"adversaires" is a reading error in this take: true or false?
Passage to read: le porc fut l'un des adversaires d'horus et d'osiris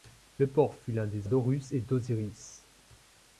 true